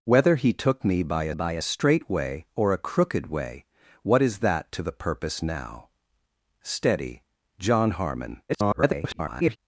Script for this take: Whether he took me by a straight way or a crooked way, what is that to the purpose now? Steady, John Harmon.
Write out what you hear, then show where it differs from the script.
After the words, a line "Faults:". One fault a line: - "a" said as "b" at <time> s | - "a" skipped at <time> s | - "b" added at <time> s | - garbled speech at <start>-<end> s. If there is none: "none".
Whether he took me by a by a straight way or a crooked way, what is that to the purpose now? Steady, John Harmon. [garbled]
Faults:
- "by a" added at 1.3 s
- garbled speech at 8.5-9.6 s